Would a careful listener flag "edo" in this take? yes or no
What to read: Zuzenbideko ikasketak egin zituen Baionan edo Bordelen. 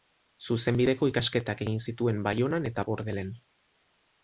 yes